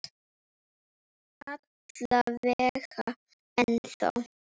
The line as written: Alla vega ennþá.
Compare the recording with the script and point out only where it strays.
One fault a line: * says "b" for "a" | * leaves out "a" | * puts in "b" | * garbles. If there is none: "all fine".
all fine